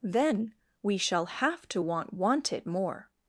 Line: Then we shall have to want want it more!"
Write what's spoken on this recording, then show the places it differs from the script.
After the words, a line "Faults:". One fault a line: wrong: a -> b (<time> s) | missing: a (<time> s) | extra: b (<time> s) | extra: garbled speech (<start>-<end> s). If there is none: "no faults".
Then we shall have to want want it more!"
Faults:
no faults